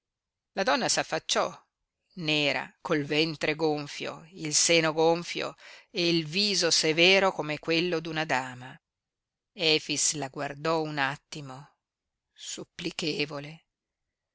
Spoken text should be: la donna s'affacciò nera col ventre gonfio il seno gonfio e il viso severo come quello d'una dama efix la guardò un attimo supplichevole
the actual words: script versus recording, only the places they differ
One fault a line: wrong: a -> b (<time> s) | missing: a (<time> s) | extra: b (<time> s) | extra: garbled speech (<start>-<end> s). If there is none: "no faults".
no faults